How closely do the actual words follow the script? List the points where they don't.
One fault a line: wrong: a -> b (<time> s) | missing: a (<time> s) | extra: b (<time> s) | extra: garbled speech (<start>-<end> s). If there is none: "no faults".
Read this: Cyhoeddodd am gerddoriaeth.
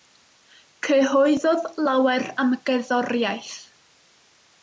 extra: lawer (1.9 s)